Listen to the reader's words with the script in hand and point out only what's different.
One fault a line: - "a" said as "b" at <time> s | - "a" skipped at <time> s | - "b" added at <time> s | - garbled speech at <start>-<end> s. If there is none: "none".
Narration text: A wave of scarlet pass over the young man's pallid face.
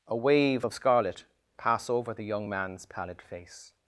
none